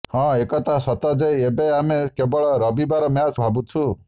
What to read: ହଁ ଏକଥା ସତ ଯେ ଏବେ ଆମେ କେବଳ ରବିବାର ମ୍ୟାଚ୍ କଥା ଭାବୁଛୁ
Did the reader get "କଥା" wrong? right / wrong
wrong